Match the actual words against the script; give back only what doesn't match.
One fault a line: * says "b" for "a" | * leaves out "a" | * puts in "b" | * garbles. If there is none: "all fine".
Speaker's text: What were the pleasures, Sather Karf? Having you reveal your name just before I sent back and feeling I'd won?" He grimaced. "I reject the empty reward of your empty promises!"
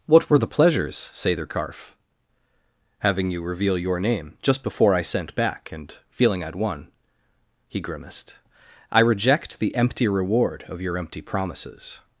all fine